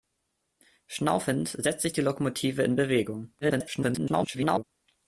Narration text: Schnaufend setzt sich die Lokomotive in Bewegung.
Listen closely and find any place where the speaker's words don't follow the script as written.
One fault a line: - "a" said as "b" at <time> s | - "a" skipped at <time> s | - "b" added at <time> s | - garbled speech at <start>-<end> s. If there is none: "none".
- garbled speech at 3.4-4.6 s